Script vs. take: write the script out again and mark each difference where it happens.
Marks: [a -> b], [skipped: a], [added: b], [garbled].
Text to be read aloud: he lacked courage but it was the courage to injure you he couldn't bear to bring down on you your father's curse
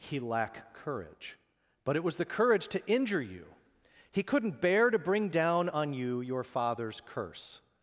he [lacked -> lack] courage but it was the courage to injure you he couldn't bear to bring down on you your father's curse